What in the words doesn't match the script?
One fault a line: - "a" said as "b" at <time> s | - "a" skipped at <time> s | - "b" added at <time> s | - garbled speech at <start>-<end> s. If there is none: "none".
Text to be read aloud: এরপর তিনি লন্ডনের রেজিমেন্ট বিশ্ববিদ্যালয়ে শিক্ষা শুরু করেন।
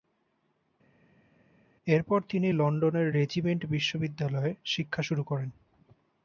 none